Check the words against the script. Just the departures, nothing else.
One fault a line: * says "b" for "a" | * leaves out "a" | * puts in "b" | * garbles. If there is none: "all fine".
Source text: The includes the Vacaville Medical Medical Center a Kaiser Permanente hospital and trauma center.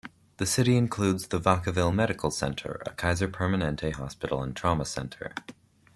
* puts in "city"
* leaves out "Medical"